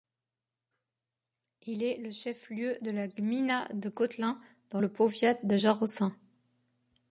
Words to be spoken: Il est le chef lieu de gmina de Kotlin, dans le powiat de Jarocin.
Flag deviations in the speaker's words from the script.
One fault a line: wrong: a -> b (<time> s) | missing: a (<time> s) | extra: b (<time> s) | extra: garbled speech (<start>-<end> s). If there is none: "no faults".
extra: la (2.9 s)